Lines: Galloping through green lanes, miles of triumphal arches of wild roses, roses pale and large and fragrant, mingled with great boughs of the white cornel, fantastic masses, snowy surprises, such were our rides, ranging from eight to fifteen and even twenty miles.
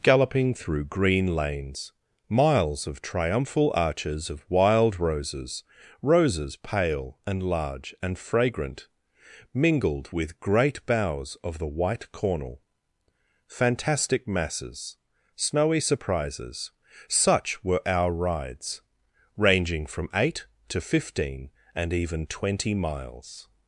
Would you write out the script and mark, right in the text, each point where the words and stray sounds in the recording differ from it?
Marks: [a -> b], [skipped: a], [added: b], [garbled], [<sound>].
Galloping through green lanes, miles of triumphal arches of wild roses, roses pale and large and fragrant, mingled with great boughs of the white cornel, fantastic masses, snowy surprises, such were our rides, ranging from eight to fifteen and even twenty miles.